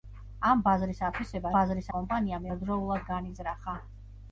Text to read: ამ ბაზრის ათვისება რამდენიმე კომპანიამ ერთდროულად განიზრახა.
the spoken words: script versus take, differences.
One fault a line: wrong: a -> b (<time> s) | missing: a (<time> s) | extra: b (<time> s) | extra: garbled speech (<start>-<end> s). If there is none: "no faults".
wrong: რამდენიმე -> ბაზრის (1.6 s)